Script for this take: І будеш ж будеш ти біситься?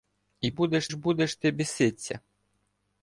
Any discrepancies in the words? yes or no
no